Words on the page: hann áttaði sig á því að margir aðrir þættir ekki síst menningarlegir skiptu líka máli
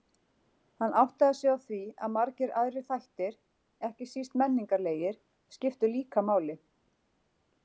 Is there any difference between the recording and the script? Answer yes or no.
no